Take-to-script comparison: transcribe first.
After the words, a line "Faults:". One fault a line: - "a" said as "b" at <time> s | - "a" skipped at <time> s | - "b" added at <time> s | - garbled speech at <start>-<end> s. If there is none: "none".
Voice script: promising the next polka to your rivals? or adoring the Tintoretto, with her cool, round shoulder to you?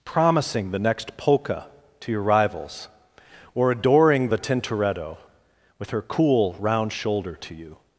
promising the next polka to your rivals? or adoring the Tintoretto, with her cool, round shoulder to you?
Faults:
none